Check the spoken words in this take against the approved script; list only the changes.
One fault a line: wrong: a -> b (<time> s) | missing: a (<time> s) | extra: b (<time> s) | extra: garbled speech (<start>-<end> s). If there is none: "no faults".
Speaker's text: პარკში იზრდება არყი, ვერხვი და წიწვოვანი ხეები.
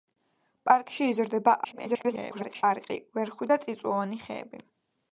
extra: garbled speech (1.6-2.6 s)